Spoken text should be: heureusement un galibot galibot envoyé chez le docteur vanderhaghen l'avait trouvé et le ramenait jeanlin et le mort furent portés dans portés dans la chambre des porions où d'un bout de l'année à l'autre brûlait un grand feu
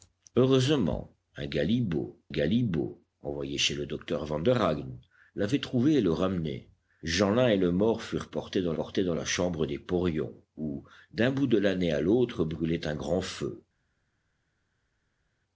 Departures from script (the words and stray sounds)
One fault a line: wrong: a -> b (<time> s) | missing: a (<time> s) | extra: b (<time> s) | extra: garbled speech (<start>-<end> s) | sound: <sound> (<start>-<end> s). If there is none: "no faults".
no faults